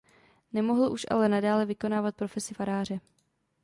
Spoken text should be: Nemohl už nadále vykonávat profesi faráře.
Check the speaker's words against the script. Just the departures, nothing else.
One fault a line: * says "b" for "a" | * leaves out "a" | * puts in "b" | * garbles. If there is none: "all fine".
* puts in "ale"